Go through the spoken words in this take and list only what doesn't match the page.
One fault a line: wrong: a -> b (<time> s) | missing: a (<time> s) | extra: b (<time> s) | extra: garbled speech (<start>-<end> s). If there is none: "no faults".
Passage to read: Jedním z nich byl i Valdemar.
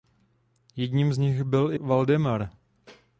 no faults